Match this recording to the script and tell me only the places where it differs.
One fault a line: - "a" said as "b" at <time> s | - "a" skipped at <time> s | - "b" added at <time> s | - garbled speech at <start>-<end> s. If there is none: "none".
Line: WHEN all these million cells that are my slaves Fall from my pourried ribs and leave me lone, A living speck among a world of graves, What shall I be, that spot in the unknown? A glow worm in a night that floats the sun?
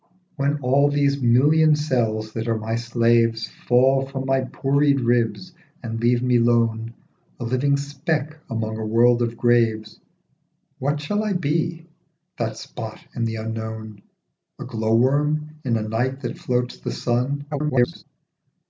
- garbled speech at 17.5-18.0 s